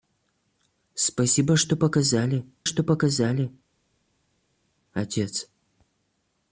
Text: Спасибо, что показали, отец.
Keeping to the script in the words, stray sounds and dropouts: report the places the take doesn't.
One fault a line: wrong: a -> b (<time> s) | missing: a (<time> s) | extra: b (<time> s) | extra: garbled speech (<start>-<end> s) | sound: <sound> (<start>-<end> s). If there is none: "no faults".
extra: что показали (2.6 s)